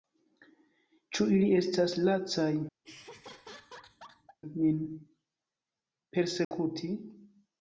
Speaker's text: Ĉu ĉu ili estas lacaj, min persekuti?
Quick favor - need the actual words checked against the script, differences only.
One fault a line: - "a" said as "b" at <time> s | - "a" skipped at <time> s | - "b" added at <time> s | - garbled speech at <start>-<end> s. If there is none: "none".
- "ĉu" skipped at 1.3 s